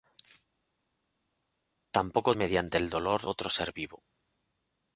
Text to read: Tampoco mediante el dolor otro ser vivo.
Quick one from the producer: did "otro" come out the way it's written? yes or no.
yes